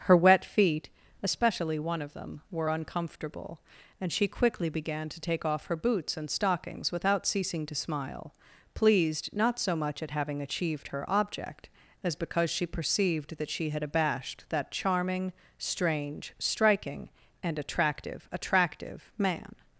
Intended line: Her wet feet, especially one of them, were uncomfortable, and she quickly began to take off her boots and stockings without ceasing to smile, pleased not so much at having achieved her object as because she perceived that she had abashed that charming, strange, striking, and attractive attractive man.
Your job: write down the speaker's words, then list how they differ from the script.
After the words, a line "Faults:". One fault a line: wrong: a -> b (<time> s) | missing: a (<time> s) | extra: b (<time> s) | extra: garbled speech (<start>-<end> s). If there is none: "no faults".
Her wet feet, especially one of them, were uncomfortable, and she quickly began to take off her boots and stockings without ceasing to smile, pleased not so much at having achieved her object as because she perceived that she had abashed that charming, strange, striking, and attractive attractive man.
Faults:
no faults